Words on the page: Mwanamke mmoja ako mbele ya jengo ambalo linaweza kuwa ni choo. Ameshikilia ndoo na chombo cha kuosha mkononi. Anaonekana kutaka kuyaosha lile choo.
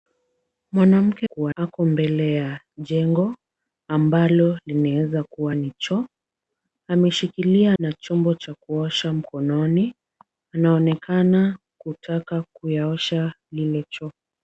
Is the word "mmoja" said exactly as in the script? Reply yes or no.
no